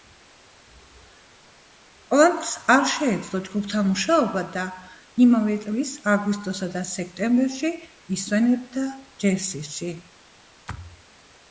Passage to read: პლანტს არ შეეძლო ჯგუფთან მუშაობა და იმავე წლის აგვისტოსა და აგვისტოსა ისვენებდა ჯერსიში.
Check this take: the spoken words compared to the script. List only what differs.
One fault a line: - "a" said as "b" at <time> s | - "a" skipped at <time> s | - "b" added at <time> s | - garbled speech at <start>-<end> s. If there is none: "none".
- "აგვისტოსა" said as "სექტემბერში" at 6.9 s